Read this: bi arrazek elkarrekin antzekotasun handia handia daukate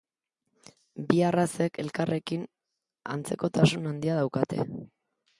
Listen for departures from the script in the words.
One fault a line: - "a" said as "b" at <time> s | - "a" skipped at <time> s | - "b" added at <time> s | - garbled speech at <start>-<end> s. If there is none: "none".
- "handia" skipped at 4.2 s